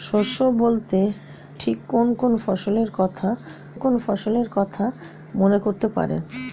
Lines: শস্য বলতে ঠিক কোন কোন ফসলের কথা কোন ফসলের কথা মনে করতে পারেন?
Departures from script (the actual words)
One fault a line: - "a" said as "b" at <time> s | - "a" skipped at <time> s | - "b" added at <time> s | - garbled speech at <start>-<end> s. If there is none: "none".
none